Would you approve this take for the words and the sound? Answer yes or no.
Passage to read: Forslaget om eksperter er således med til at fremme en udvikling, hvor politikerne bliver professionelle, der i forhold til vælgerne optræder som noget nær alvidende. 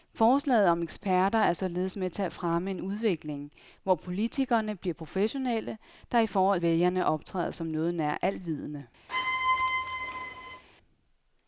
no